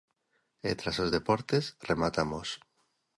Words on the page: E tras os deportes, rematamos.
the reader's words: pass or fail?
pass